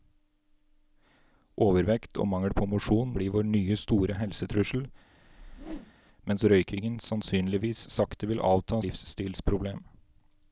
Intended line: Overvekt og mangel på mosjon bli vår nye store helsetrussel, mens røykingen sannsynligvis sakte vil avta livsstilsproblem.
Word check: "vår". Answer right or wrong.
right